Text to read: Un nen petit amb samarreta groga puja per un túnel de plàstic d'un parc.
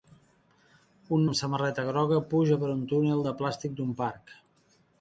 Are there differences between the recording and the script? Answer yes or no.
yes